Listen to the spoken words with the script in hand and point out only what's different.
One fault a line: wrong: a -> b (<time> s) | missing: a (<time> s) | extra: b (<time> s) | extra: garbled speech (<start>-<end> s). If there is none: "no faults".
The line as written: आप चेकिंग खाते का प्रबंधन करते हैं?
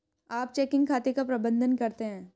no faults